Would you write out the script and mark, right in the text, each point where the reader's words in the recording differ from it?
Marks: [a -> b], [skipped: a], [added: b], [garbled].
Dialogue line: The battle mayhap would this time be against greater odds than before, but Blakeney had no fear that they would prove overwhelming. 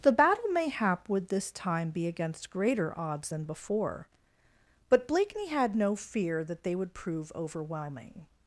The battle mayhap would this time be against greater odds than before, but Blakeney had no fear that they would prove overwhelming.